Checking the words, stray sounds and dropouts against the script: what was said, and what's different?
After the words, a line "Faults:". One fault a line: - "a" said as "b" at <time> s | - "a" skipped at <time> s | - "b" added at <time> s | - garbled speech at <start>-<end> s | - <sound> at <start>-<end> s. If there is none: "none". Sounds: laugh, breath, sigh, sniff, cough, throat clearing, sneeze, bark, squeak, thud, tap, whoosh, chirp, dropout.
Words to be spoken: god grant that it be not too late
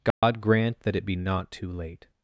god grant that it be not too late
Faults:
- dropout at 0.1-0.2 s